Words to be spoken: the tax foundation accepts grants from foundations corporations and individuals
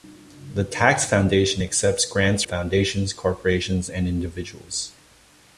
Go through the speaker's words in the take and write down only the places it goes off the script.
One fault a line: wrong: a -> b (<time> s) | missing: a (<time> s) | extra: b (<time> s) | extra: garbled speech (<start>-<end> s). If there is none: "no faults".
missing: from (2.4 s)